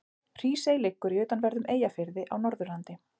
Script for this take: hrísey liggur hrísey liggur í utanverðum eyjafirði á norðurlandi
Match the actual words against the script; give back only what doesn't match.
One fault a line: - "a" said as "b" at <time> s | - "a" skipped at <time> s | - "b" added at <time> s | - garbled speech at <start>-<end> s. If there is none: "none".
- "hrísey liggur" skipped at 1.1 s